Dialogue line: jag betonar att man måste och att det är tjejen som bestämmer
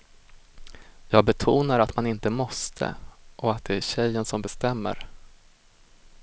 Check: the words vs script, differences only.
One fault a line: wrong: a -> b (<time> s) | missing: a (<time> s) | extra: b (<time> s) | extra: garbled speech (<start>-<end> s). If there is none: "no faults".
extra: inte (2.1 s)